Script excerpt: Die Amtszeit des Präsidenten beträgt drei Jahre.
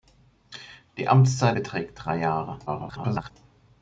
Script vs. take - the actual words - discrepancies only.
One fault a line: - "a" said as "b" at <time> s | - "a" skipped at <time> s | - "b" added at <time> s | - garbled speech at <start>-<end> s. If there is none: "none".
- "des Präsidenten" skipped at 1.6 s
- garbled speech at 2.7-3.3 s